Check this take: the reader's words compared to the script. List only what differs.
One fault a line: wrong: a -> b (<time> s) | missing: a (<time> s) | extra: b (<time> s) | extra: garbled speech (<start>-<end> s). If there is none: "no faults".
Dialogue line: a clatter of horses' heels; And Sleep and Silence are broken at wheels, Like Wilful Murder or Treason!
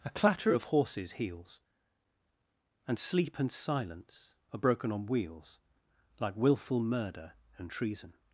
wrong: at -> on (4.9 s)
wrong: or -> and (7.6 s)